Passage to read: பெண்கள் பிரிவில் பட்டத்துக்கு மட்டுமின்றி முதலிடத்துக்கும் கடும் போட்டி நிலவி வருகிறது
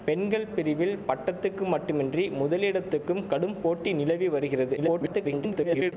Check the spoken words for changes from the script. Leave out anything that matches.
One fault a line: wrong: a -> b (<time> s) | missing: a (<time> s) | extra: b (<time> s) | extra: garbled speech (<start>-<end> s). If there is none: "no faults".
extra: garbled speech (4.8-5.9 s)